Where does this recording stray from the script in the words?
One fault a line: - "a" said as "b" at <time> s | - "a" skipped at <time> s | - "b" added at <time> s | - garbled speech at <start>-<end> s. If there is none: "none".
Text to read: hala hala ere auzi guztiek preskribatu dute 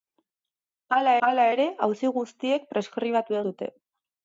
none